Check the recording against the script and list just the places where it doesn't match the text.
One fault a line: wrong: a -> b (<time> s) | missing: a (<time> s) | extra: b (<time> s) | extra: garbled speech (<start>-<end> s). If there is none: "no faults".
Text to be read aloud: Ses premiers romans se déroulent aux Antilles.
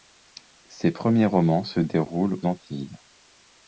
missing: aux (2.4 s)